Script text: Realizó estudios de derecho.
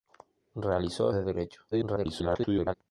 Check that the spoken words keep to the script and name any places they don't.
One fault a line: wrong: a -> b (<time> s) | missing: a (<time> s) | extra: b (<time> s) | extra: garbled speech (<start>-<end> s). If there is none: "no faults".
missing: estudios (1.1 s)
extra: garbled speech (1.7-2.7 s)